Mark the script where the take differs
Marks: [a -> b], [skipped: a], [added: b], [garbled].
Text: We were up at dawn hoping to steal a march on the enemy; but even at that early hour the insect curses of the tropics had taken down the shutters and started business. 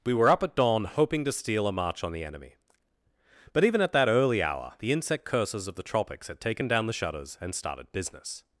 We were up at dawn hoping to steal a march on the enemy; but even at that early hour the insect curses of the tropics had taken down the shutters and started business.